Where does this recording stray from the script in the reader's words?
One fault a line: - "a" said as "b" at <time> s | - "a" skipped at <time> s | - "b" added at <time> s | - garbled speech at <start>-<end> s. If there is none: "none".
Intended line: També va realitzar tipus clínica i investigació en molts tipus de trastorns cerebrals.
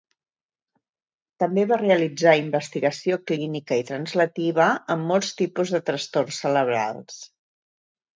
- "tipus" said as "investigació" at 2.4 s
- "investigació" said as "translativa" at 3.9 s